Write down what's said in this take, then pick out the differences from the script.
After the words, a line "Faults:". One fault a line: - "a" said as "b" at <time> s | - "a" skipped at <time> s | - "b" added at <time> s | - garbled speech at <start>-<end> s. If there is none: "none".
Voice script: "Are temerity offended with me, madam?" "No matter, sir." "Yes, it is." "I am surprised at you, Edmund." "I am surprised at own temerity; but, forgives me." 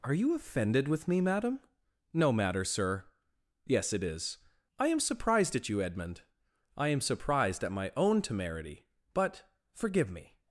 "Are you offended with me, madam?" "No matter, sir." "Yes, it is." "I am surprised at you, Edmund." "I am surprised at my own temerity; but, forgive me."
Faults:
- "temerity" said as "you" at 0.1 s
- "my" added at 7.7 s
- "forgives" said as "forgive" at 9.7 s